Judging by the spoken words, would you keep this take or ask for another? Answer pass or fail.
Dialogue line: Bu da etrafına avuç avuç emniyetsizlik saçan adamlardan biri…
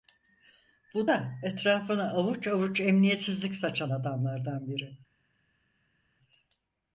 pass